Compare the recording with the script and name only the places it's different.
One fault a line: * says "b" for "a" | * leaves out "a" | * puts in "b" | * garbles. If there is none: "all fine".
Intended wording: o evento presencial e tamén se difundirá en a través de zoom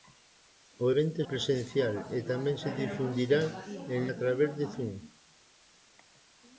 all fine